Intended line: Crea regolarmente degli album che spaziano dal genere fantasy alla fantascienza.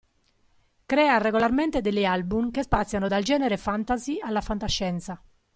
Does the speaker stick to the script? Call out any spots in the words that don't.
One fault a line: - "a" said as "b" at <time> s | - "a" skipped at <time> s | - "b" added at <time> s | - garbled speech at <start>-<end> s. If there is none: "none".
none